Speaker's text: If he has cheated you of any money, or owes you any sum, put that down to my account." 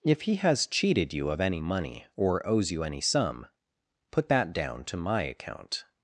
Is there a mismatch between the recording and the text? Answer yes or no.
no